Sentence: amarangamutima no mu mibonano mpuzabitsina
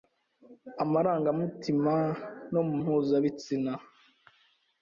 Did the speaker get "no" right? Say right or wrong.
right